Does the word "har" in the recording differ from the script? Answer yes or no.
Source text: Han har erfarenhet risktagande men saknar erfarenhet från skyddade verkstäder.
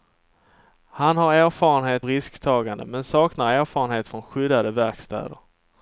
no